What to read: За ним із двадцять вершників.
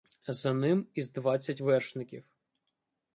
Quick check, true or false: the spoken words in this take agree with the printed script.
true